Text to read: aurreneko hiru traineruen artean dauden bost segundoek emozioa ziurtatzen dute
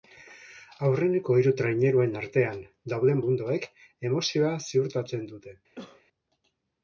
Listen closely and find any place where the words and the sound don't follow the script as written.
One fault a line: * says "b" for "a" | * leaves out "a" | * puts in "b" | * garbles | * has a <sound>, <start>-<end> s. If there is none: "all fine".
* leaves out "bost"
* has a cough, 5.8-6.0 s